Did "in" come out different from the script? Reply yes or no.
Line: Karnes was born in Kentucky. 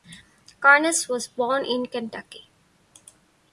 no